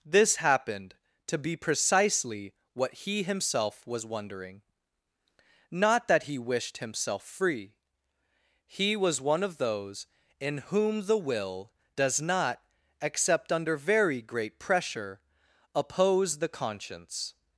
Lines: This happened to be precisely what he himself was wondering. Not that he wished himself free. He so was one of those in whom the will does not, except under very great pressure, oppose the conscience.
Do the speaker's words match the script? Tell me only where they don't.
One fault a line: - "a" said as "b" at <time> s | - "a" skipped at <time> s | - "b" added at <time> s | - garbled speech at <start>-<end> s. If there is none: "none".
- "so" skipped at 8.9 s